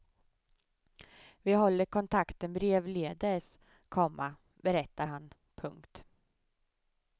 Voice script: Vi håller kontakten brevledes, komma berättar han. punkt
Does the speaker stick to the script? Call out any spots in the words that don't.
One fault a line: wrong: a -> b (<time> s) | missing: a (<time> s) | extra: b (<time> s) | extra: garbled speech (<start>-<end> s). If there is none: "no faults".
no faults